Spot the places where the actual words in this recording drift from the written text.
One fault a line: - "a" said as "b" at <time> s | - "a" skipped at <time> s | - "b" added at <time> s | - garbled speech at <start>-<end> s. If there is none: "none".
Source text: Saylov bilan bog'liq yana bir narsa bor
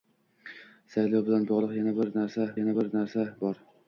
- "yana bir narsa" added at 2.6 s